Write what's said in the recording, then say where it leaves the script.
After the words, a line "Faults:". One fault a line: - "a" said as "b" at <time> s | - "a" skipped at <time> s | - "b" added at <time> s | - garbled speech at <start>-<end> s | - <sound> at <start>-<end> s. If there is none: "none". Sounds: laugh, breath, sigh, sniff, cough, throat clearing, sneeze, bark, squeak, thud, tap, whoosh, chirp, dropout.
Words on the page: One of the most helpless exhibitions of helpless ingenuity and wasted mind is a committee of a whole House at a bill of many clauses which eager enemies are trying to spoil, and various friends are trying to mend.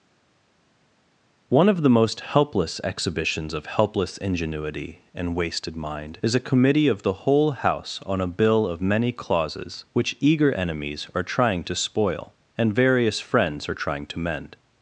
One of the most helpless exhibitions of helpless ingenuity and wasted mind is a committee of the whole House on a bill of many clauses which eager enemies are trying to spoil, and various friends are trying to mend.
Faults:
- "a" said as "the" at 7.0 s
- "at" said as "on" at 8.1 s